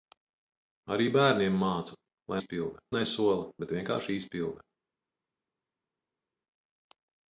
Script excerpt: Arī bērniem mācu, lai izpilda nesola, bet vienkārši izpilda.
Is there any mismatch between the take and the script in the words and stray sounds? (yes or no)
no